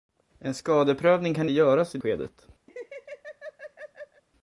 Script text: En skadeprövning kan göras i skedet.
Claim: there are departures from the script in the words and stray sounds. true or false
true